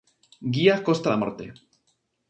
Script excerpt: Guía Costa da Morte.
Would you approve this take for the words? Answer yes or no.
yes